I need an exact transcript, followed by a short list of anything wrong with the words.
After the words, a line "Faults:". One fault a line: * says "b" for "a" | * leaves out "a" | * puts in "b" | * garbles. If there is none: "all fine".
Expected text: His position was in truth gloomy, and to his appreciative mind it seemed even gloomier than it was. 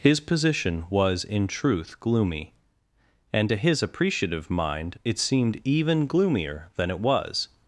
His position was in truth gloomy, and to his appreciative mind it seemed even gloomier than it was.
Faults:
all fine